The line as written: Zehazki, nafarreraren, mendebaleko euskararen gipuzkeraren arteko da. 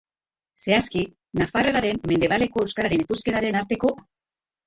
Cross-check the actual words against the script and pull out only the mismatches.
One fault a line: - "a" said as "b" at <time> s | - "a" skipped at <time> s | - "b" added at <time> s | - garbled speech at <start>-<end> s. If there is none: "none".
none